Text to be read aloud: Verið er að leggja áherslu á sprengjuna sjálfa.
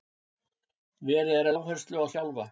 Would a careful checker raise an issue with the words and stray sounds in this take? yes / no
yes